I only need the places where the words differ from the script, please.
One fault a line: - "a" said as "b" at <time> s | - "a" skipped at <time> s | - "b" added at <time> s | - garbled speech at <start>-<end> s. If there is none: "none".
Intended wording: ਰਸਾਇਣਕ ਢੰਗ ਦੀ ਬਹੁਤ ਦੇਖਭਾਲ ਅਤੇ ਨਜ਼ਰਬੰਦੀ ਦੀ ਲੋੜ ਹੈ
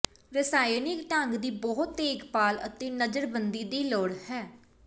none